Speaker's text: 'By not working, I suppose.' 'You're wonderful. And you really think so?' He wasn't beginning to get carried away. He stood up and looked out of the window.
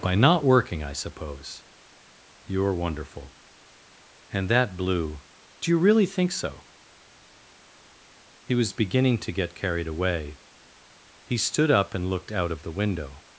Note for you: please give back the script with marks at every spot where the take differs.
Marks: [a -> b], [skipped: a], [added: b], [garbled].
'By not working, I suppose.' 'You're wonderful. And [added: that blue Do] you really think so?' He [wasn't -> was] beginning to get carried away. He stood up and looked out of the window.